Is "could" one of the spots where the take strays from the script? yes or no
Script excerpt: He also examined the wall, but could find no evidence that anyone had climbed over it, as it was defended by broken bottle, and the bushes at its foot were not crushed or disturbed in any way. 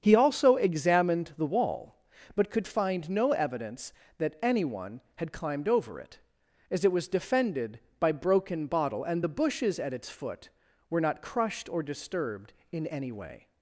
no